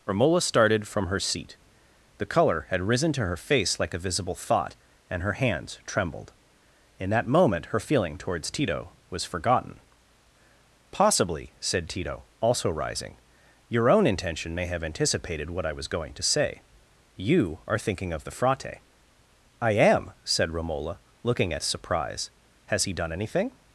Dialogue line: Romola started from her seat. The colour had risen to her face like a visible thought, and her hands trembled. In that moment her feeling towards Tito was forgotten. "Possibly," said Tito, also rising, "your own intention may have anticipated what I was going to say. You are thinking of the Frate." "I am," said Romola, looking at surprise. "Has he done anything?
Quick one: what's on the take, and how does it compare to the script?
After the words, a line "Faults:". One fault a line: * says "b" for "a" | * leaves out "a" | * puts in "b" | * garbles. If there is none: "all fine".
Romola started from her seat. The colour had risen to her face like a visible thought, and her hands trembled. In that moment her feeling towards Tito was forgotten. "Possibly," said Tito, also rising, "your own intention may have anticipated what I was going to say. You are thinking of the Frate." "I am," said Romola, looking at surprise. "Has he done anything?
Faults:
all fine